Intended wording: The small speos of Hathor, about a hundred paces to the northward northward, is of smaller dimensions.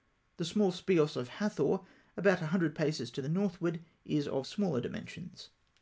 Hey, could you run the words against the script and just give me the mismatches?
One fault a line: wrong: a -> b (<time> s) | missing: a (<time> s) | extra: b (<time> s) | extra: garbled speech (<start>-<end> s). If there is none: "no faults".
missing: northward (3.8 s)